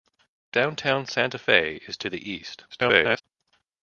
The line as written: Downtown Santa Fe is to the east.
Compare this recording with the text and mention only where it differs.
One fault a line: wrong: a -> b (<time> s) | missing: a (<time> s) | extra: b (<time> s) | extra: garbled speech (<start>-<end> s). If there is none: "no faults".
extra: garbled speech (2.7-3.2 s)